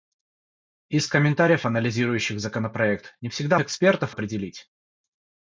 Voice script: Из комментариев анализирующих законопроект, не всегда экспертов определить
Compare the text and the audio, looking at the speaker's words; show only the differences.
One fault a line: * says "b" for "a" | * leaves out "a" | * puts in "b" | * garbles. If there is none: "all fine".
all fine